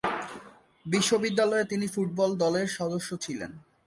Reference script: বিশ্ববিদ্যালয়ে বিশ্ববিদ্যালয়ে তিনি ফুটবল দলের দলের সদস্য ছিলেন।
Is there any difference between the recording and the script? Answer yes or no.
yes